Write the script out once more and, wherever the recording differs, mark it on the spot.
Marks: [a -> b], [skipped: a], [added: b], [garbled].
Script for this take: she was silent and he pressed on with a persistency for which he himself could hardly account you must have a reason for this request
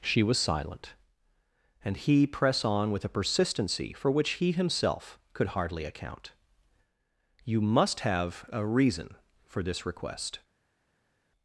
she was silent and he [pressed -> press] on with a persistency for which he himself could hardly account you must have a reason for this request